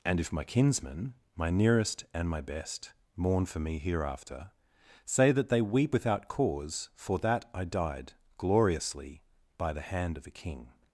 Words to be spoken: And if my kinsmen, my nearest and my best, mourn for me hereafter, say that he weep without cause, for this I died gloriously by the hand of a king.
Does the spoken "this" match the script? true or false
false